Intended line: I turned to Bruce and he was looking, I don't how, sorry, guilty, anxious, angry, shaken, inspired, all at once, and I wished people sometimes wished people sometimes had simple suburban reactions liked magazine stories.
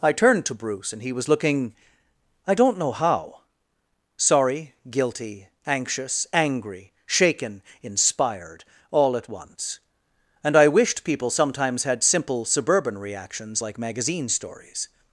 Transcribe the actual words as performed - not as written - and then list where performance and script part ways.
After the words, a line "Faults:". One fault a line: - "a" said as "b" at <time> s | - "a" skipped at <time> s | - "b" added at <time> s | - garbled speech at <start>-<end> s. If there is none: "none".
I turned to Bruce and he was looking, I don't know how, sorry, guilty, anxious, angry, shaken, inspired, all at once, and I wished people sometimes had simple suburban reactions like magazine stories.
Faults:
- "know" added at 2.8 s
- "wished people sometimes" skipped at 11.8 s
- "liked" said as "like" at 13.6 s